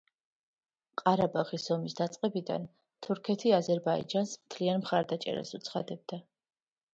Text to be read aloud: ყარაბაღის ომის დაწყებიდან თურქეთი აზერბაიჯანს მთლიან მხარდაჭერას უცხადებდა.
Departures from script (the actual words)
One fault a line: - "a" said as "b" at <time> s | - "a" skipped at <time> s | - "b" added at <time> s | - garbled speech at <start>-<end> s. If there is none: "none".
none